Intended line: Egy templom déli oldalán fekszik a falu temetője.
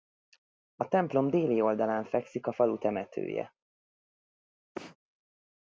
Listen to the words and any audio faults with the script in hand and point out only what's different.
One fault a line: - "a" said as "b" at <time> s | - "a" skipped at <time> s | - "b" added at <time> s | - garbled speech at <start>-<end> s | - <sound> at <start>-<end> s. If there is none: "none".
- "Egy" said as "A" at 0.8 s
- sneeze at 4.7-5.0 s